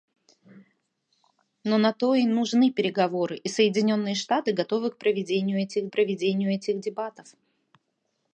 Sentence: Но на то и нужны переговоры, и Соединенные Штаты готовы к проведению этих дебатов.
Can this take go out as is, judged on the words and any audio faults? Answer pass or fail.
fail